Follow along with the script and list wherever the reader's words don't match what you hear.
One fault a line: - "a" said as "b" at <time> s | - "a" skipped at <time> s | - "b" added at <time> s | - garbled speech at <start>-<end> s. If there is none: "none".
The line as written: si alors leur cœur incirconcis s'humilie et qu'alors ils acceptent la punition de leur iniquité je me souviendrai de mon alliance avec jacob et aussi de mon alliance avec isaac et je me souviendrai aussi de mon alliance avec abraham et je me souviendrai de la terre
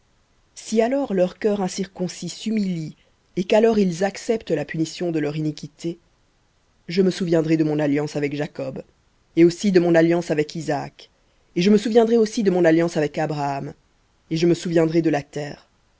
none